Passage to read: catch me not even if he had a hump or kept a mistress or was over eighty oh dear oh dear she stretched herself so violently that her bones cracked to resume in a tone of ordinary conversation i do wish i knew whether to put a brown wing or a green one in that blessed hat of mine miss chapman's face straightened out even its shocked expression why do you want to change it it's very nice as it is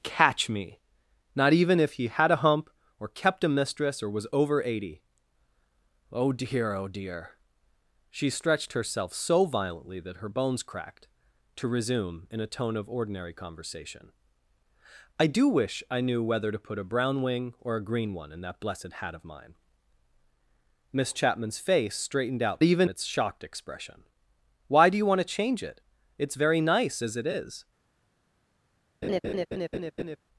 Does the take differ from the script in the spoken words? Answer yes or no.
no